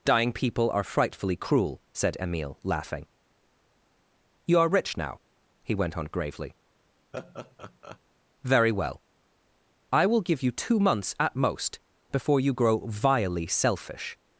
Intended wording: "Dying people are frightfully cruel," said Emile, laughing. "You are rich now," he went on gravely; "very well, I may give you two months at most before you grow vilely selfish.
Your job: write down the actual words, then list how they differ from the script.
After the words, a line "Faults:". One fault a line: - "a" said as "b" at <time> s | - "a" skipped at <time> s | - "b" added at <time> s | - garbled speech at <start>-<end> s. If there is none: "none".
"Dying people are frightfully cruel," said Emile, laughing. "You are rich now," he went on gravely; "very well, I will give you two months at most before you grow vilely selfish.
Faults:
- "may" said as "will" at 10.1 s